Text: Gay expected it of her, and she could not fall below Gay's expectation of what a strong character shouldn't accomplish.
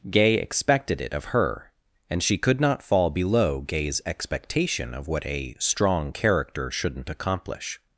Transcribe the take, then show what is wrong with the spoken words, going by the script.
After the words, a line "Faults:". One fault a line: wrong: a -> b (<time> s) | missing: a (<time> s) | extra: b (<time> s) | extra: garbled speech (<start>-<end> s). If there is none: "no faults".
Gay expected it of her, and she could not fall below Gay's expectation of what a strong character shouldn't accomplish.
Faults:
no faults